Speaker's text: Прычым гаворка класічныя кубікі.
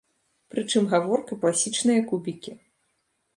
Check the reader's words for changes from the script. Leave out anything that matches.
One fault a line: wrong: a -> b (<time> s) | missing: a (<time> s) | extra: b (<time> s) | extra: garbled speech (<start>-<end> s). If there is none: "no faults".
no faults